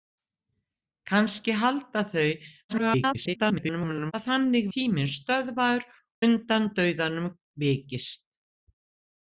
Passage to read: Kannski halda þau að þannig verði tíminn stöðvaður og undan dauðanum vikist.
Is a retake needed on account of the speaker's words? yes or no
yes